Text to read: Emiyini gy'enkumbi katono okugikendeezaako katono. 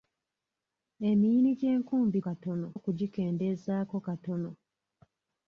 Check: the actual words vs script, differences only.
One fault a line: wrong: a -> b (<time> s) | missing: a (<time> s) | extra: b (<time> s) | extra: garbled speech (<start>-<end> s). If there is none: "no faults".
no faults